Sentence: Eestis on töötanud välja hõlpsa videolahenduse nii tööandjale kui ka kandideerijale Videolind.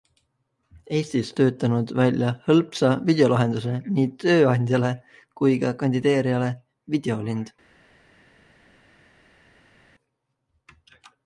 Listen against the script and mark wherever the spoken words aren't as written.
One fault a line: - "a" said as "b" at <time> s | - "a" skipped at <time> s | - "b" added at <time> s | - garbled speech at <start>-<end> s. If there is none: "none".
- "on" skipped at 1.3 s